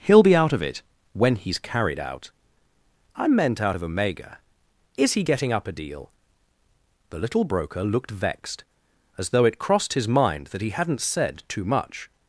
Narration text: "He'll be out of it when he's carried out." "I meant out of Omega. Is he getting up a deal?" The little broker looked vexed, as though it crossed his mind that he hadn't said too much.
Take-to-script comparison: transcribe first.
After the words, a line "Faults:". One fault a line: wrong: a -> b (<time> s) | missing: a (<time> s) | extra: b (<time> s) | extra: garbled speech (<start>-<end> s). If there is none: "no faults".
"He'll be out of it when he's carried out." "I meant out of Omega. Is he getting up a deal?" The little broker looked vexed, as though it crossed his mind that he hadn't said too much.
Faults:
no faults